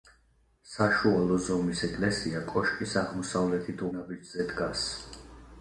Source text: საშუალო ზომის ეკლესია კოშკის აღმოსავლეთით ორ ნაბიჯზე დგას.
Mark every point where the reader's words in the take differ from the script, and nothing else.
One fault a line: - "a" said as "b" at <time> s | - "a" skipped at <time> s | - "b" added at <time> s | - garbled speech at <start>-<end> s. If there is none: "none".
- "ორ" skipped at 3.9 s